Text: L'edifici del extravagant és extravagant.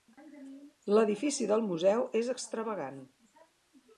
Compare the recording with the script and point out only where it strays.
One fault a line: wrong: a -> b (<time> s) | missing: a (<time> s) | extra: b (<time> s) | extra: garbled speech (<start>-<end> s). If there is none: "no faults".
wrong: extravagant -> museu (1.7 s)